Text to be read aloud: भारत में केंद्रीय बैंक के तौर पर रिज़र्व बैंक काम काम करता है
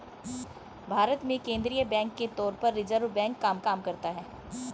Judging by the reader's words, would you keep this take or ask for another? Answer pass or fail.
pass